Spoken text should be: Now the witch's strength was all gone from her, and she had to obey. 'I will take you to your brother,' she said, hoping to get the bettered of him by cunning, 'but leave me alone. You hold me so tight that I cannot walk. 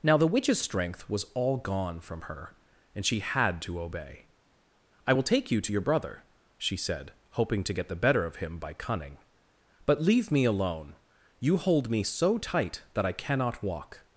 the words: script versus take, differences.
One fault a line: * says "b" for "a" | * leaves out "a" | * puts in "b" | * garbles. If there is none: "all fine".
* says "better" for "bettered"